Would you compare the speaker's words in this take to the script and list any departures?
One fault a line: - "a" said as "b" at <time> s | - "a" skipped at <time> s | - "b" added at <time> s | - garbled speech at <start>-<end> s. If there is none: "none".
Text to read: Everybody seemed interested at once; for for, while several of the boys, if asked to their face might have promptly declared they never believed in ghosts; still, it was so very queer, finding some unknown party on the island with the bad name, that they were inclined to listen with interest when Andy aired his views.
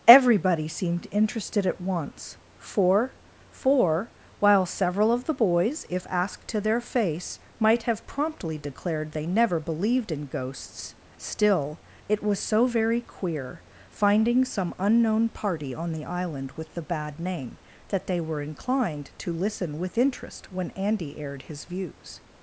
none